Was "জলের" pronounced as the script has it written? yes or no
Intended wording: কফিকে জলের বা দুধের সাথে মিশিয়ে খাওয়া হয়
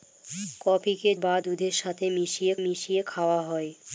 no